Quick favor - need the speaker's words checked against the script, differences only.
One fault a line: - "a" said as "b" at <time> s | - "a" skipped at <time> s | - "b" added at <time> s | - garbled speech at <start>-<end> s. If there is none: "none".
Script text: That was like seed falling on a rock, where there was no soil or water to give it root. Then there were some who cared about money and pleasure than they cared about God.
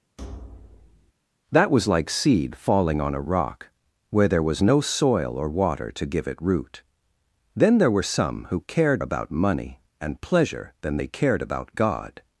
none